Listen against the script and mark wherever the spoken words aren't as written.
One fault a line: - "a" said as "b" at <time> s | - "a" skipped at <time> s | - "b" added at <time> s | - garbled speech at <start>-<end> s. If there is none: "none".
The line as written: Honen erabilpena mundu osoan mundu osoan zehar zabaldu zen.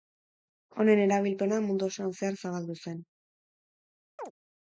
- "mundu osoan" skipped at 2.2 s